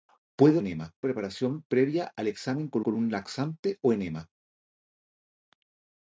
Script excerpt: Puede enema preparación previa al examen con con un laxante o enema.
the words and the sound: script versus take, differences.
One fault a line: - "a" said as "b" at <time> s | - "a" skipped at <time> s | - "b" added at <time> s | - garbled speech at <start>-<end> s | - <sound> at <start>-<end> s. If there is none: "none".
none